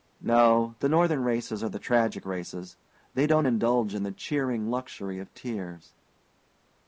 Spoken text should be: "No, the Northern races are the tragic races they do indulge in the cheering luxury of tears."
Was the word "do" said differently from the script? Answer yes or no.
yes